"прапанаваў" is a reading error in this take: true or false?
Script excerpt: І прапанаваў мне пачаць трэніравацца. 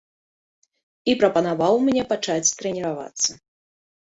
false